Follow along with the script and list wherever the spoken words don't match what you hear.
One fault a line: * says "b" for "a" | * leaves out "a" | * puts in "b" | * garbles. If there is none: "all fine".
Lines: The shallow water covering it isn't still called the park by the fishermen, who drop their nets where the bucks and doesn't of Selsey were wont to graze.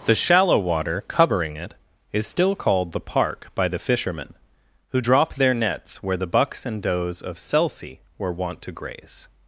* says "is" for "isn't"
* says "does" for "doesn't"